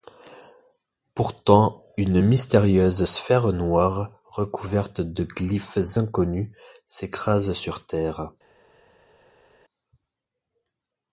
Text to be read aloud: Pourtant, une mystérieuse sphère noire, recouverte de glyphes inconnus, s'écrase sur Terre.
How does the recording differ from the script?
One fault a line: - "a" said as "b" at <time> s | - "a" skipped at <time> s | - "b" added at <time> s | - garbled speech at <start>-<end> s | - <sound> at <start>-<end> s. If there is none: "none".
none